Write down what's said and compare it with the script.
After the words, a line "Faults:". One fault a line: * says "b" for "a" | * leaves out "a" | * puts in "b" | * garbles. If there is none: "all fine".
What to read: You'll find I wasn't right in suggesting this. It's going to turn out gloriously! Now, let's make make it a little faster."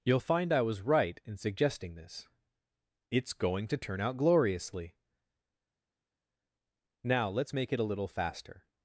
You'll find I was right in suggesting this. It's going to turn out gloriously! Now, let's make it a little faster."
Faults:
* says "was" for "wasn't"
* leaves out "make"